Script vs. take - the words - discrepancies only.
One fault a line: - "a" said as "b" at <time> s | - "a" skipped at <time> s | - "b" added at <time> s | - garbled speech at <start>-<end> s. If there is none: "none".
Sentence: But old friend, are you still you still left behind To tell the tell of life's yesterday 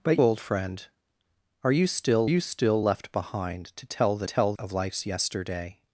none